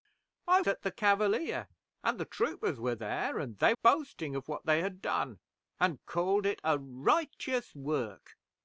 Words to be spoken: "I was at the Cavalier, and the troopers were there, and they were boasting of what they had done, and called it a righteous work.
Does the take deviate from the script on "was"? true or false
true